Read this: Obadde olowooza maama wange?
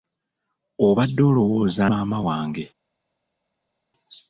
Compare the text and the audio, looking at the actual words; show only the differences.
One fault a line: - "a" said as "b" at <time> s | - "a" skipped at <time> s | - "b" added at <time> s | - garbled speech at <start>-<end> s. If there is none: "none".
none